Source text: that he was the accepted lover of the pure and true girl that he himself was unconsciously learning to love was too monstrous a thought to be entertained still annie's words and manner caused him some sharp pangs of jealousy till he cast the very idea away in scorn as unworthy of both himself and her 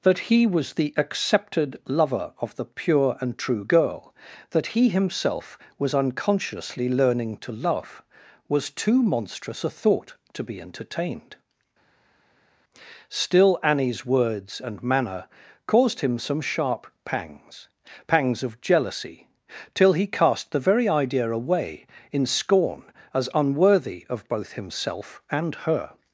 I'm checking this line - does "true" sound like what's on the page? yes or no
yes